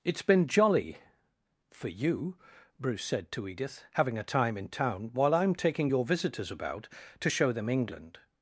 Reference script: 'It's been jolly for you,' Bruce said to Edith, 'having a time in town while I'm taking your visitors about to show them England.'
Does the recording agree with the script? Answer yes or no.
yes